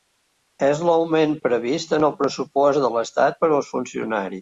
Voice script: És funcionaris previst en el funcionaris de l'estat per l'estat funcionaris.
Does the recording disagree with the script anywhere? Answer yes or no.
yes